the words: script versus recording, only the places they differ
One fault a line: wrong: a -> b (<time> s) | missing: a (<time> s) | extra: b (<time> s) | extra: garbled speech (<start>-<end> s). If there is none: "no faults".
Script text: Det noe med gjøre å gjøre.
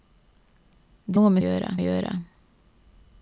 no faults